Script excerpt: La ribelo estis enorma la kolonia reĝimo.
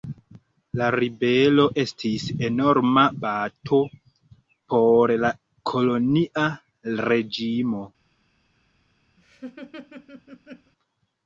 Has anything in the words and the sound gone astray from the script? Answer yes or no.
yes